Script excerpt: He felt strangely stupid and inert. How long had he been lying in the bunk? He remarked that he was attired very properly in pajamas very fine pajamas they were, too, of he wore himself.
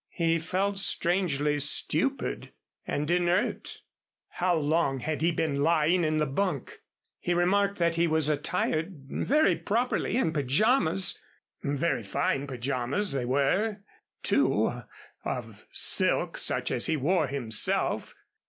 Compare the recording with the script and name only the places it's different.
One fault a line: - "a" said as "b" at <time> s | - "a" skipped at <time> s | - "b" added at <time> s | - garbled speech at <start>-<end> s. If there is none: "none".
- "silk such as" added at 15.7 s